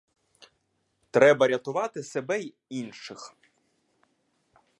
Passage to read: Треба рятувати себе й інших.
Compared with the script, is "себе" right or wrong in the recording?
right